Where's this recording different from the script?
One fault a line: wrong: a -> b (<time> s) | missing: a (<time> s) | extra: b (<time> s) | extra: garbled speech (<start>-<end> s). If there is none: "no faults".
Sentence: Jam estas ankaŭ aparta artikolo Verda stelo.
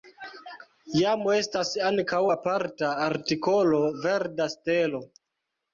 no faults